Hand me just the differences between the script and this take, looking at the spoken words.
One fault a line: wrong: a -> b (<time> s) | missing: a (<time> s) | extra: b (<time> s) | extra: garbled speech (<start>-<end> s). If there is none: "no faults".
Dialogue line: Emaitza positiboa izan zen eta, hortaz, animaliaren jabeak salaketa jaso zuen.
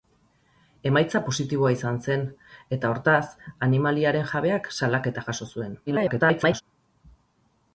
extra: garbled speech (5.9-6.6 s)